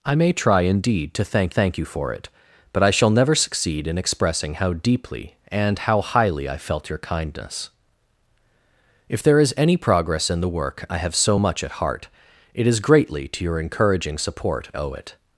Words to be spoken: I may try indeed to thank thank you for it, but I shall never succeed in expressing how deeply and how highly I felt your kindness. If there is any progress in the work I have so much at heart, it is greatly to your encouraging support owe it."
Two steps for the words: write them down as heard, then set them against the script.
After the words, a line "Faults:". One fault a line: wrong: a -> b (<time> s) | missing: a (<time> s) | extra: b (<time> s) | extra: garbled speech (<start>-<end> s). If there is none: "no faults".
I may try indeed to thank thank you for it, but I shall never succeed in expressing how deeply and how highly I felt your kindness. If there is any progress in the work I have so much at heart, it is greatly to your encouraging support owe it."
Faults:
no faults